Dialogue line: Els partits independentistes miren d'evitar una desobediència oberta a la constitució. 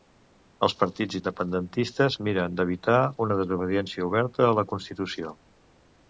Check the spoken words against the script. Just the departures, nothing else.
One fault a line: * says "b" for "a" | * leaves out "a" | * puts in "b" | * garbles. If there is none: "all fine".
all fine